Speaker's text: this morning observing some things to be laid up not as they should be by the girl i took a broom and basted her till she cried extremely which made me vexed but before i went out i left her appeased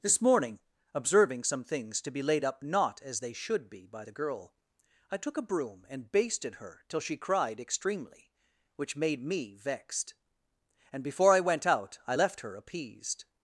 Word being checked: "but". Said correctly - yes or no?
no